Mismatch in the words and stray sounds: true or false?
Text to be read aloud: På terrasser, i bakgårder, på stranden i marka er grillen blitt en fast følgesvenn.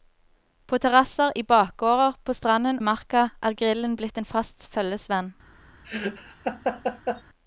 true